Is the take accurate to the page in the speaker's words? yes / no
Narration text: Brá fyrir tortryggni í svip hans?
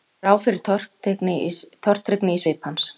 yes